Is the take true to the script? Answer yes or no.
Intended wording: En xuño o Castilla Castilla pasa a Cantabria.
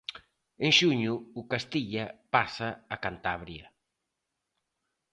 no